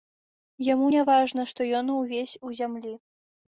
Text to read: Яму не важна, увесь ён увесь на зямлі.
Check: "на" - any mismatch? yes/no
yes